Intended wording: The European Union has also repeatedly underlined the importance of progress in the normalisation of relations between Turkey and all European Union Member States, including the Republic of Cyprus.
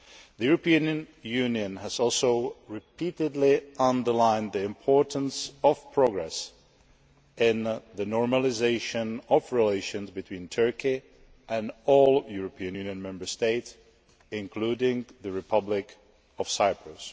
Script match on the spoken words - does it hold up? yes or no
yes